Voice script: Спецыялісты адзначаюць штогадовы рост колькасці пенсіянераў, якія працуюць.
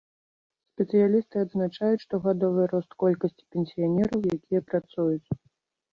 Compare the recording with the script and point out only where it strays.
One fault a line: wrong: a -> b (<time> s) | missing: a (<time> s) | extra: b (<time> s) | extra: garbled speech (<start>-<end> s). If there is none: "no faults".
no faults